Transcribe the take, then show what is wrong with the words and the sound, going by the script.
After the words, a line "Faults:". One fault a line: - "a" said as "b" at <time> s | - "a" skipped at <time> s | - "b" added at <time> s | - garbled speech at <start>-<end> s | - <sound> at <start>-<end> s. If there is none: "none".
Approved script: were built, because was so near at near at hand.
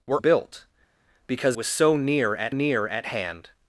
were built, because was so near at near at hand.
Faults:
none